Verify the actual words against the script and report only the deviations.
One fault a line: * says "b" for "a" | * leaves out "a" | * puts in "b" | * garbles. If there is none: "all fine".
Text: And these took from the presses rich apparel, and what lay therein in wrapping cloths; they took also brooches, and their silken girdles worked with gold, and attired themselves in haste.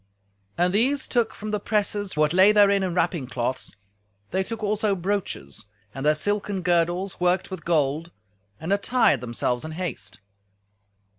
* leaves out "rich apparel and"